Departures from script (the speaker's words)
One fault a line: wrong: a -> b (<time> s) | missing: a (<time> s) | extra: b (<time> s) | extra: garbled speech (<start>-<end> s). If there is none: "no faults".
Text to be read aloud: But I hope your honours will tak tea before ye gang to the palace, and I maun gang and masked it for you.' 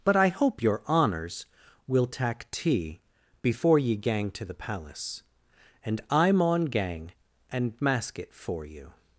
wrong: masked -> mask (7.8 s)